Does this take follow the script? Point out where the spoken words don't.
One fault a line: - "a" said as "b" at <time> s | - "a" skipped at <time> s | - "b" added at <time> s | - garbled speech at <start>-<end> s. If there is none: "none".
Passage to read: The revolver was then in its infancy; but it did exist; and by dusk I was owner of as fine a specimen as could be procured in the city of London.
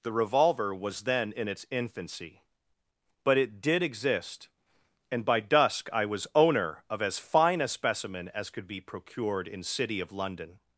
- "the" skipped at 9.6 s